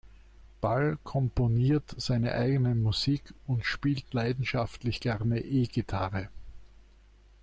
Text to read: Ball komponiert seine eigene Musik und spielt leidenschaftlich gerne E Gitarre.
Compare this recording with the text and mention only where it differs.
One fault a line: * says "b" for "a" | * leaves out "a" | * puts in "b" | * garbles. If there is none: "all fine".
all fine